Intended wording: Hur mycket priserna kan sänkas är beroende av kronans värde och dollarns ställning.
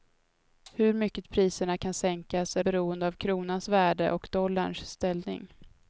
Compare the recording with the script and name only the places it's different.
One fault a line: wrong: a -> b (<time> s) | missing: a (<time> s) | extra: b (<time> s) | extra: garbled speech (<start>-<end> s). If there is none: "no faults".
no faults